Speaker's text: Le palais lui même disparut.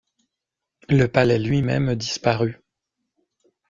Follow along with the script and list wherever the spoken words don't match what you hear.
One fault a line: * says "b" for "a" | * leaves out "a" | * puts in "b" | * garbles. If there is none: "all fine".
all fine